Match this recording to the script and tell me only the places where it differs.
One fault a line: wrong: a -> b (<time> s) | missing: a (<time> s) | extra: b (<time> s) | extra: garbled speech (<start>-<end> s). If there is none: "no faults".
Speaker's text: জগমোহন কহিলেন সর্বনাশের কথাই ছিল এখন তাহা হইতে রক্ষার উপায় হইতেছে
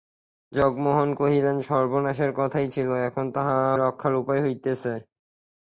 missing: হইতে (3.6 s)